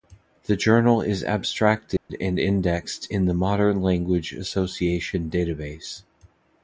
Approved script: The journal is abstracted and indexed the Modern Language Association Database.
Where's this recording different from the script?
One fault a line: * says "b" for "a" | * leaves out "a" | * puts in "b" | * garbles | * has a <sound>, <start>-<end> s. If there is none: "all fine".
* has a dropout, 2.0-2.1 s
* puts in "in"